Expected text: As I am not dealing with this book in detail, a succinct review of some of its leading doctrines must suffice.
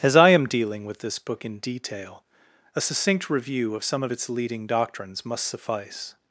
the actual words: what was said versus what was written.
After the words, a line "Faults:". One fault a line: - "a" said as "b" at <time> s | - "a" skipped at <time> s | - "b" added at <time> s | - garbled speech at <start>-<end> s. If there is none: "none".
As I am dealing with this book in detail, a succinct review of some of its leading doctrines must suffice.
Faults:
- "not" skipped at 0.5 s